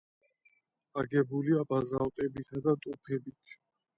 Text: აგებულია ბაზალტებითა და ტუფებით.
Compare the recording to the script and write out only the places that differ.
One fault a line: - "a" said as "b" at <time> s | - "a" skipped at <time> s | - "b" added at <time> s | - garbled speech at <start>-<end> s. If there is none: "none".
none